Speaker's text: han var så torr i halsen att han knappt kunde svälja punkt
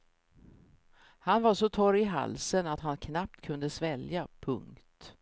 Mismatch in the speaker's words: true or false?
false